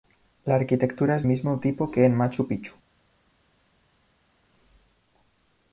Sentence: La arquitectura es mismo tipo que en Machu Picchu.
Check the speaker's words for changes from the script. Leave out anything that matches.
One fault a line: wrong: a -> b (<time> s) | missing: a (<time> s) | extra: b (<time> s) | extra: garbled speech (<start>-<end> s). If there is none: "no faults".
no faults